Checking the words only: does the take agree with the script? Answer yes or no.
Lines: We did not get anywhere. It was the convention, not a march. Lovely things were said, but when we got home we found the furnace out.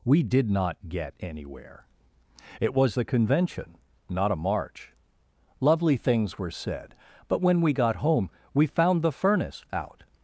yes